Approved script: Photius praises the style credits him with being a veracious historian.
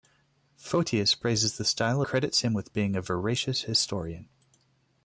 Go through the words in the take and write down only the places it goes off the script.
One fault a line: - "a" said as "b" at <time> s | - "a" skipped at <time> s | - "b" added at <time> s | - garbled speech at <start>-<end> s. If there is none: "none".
none